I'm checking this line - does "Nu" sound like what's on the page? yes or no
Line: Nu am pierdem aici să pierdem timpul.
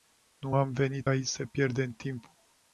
yes